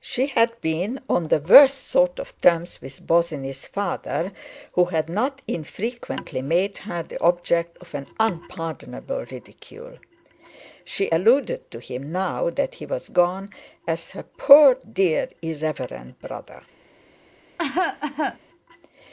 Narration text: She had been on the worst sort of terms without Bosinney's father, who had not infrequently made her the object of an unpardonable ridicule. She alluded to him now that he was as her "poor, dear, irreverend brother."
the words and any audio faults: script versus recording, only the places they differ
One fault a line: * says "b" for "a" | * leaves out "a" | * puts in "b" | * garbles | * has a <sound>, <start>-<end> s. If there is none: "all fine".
* says "with" for "without"
* puts in "gone"
* has a cough, 17.6-18.4 s